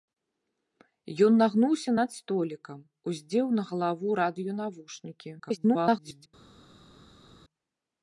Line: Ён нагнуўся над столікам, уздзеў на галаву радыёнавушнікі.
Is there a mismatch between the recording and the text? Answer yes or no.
yes